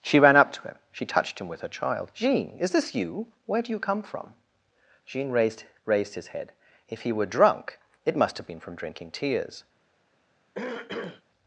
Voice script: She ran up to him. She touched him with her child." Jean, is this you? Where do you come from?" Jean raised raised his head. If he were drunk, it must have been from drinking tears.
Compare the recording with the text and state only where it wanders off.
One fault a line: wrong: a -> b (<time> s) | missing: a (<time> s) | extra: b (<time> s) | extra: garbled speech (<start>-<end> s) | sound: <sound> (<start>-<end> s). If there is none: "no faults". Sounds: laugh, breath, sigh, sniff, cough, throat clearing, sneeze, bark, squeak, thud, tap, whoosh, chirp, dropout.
sound: throat clearing (10.5-11.2 s)